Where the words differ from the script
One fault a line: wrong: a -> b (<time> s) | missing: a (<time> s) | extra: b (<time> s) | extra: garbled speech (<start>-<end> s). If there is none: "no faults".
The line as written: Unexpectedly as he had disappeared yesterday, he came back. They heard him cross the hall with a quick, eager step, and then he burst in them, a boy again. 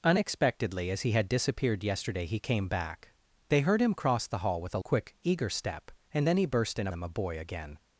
no faults